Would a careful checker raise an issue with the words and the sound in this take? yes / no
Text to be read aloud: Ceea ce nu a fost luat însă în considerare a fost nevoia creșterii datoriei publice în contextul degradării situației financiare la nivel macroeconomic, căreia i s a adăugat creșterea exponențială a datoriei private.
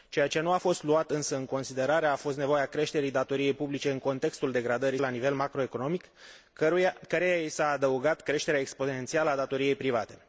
yes